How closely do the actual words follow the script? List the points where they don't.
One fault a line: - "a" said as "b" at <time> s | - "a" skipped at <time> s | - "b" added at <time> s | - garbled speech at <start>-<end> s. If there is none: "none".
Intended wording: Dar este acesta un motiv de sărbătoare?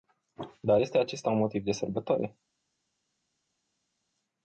none